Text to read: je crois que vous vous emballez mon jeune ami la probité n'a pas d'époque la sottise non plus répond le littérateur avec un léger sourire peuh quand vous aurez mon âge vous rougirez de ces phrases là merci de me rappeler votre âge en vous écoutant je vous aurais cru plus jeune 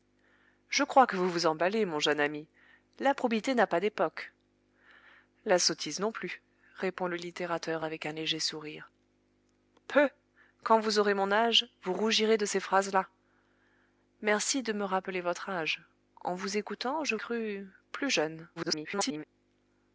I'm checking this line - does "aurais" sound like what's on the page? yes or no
no